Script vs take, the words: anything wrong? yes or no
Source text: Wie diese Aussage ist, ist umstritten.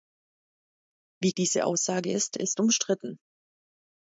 no